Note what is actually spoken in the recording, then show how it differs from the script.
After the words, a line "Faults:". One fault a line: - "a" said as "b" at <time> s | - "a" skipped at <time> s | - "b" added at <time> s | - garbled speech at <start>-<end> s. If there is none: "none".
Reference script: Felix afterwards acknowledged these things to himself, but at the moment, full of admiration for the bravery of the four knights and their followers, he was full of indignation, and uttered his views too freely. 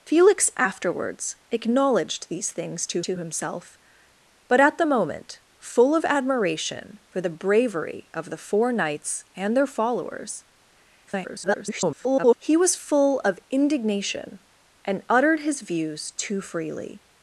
Felix afterwards acknowledged these things to to himself, but at the moment, full of admiration for the bravery of the four knights and their followers, [garbled] he was full of indignation, and uttered his views too freely.
Faults:
- "to" added at 3.0 s
- garbled speech at 11.1-12.4 s